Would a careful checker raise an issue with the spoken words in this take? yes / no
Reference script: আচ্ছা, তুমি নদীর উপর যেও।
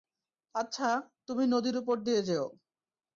yes